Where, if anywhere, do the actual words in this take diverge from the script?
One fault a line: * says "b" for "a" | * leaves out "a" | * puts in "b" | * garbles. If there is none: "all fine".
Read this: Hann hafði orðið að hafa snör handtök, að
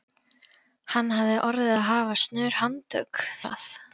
all fine